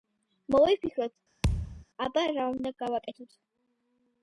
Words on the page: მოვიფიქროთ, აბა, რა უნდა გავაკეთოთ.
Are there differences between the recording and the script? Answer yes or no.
no